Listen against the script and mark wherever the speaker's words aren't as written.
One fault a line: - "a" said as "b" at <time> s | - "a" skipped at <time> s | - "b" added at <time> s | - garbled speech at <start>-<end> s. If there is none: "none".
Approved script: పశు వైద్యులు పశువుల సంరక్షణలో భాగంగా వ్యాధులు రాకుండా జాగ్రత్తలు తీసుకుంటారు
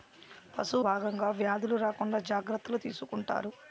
- "వైద్యులు పశువుల సంరక్షణలో" skipped at 0.8 s